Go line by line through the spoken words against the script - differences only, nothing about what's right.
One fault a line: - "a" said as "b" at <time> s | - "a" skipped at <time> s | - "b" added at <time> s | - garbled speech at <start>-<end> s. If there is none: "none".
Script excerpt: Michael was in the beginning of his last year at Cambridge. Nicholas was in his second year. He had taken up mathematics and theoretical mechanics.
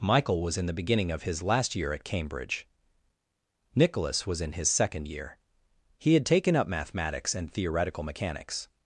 none